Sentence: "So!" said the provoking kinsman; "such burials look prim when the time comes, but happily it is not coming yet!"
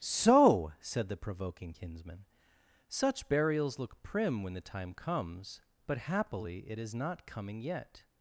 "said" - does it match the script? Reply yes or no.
yes